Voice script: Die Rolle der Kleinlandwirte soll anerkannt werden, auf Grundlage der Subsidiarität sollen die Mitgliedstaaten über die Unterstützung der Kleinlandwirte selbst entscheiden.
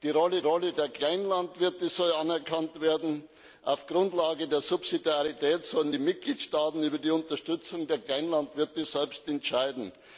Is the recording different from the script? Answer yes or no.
yes